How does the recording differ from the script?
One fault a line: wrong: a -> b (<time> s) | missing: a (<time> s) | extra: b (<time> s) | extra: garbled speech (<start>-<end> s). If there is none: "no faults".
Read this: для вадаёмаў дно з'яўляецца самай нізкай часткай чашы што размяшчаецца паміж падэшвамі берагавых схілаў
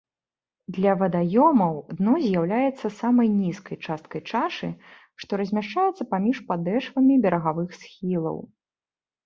no faults